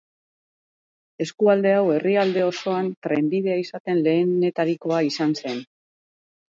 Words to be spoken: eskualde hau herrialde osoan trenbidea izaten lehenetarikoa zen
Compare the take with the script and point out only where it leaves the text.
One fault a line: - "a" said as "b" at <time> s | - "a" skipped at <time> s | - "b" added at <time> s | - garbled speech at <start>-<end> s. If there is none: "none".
- "izan" added at 5.1 s